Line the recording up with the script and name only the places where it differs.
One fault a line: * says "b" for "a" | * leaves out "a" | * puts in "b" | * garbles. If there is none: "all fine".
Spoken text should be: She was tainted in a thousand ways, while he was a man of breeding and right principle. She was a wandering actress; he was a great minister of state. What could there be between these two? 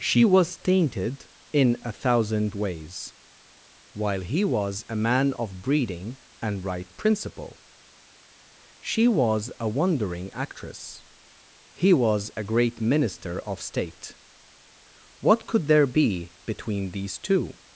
all fine